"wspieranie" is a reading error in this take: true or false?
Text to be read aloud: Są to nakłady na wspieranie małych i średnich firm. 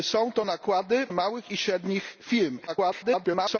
true